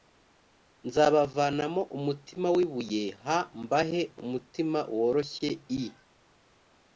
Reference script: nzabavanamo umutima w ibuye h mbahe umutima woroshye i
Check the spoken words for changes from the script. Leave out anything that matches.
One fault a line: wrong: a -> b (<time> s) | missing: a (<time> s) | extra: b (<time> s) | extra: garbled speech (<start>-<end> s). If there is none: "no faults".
no faults